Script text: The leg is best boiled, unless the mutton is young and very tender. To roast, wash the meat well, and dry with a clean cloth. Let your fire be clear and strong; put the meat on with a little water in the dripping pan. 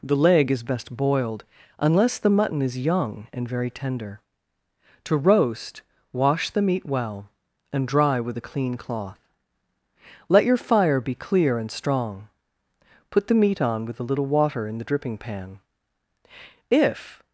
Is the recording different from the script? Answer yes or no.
yes